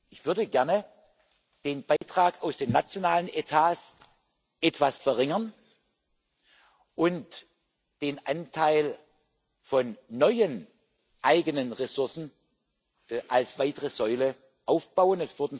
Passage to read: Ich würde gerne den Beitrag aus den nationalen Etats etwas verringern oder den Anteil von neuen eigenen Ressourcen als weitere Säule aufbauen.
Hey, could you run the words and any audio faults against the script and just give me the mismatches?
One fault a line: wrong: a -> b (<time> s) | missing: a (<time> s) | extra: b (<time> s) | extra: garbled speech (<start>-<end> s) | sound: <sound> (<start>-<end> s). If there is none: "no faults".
sound: dropout (2.0-2.0 s)
wrong: oder -> und (7.0 s)